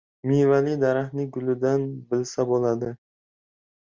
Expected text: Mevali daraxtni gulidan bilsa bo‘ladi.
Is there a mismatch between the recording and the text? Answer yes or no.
no